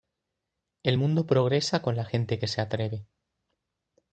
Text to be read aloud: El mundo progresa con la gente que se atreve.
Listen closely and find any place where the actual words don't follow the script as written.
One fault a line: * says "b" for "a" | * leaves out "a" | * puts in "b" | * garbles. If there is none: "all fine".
all fine